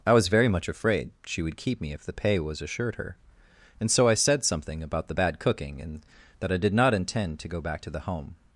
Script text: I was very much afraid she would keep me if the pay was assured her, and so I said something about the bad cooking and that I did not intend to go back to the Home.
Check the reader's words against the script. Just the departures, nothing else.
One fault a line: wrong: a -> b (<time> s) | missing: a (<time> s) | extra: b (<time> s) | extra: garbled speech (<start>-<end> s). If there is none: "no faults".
no faults